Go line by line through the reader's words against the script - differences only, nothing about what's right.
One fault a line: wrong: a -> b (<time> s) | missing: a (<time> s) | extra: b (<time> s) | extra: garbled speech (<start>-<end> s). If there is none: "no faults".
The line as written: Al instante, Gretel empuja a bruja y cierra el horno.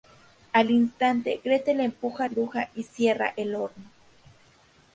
no faults